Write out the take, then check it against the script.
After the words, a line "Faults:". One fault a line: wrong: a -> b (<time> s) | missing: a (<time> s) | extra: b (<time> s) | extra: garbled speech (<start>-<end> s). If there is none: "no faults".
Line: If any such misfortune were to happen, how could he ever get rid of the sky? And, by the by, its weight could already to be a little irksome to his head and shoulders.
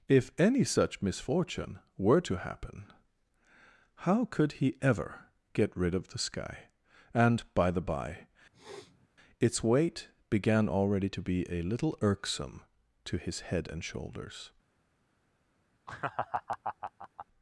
If any such misfortune were to happen, how could he ever get rid of the sky? And, by the by, its weight began already to be a little irksome to his head and shoulders.
Faults:
wrong: could -> began (10.3 s)